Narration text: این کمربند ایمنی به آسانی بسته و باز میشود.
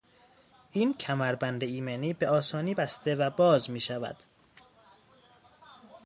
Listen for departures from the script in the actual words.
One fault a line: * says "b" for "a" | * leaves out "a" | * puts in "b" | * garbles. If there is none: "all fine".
all fine